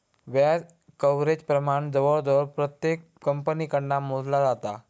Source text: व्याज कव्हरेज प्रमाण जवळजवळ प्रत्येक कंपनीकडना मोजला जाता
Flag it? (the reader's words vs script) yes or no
no